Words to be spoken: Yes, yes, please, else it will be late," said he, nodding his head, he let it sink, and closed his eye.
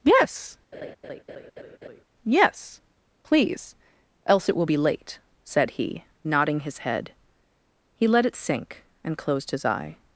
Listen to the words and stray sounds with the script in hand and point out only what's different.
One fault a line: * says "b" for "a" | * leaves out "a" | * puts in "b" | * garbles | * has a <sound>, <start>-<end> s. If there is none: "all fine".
* has a laugh, 0.7-2.0 s